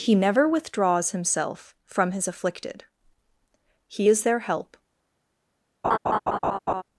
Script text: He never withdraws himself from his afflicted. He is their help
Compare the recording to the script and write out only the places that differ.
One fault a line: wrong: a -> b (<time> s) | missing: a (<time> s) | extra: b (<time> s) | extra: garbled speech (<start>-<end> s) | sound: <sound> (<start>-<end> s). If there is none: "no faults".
sound: laugh (5.8-6.8 s)